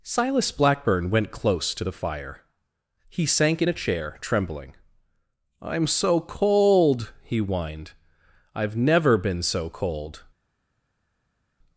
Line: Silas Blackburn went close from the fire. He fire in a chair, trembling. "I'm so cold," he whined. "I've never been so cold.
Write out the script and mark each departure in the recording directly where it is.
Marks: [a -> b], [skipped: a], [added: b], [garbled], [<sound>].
Silas Blackburn went close [from -> to] the fire. He [fire -> sank] in a chair, trembling. "I'm so cold," he whined. "I've never been so cold.